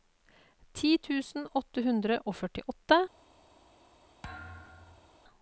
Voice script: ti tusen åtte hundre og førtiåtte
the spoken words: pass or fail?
pass